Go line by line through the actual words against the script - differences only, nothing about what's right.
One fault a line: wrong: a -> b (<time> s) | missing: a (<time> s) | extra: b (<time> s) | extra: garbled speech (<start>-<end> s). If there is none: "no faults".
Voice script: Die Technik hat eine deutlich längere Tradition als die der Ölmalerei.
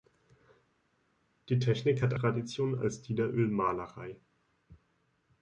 missing: eine deutlich längere (2.1 s)